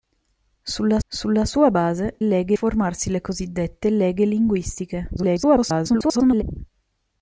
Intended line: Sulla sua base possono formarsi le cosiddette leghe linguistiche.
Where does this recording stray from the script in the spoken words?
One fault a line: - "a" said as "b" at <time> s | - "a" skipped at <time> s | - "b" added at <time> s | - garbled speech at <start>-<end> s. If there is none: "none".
- "sulla" added at 1.1 s
- "possono" said as "leghe" at 2.2 s
- garbled speech at 5.2-6.4 s